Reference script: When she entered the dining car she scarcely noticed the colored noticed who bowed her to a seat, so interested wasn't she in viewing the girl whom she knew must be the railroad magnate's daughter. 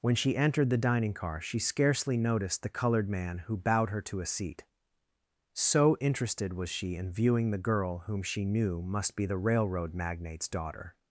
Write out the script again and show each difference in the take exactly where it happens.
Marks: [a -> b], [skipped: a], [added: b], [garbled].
When she entered the dining car she scarcely noticed the colored [noticed -> man] who bowed her to a seat, so interested [wasn't -> was] she in viewing the girl whom she knew must be the railroad magnate's daughter.